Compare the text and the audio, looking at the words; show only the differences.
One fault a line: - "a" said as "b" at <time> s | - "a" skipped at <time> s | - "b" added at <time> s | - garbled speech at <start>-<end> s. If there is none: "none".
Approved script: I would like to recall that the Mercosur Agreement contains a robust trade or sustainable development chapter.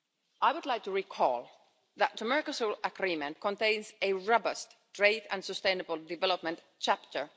- "or" said as "and" at 5.3 s